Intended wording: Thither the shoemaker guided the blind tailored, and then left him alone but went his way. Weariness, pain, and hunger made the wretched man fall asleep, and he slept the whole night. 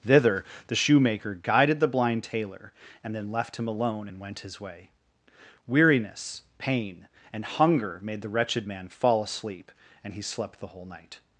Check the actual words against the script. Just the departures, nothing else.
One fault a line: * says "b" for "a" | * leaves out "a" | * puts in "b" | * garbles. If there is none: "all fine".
* says "tailor" for "tailored"
* says "and" for "but"